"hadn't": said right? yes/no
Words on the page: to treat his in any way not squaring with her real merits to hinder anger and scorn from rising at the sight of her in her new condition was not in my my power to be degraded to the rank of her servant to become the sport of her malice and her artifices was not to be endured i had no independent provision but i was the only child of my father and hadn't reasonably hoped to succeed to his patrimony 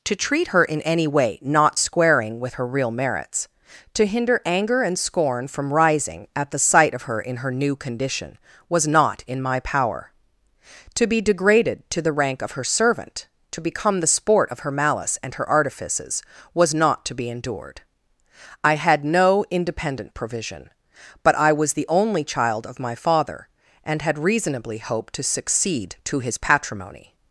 no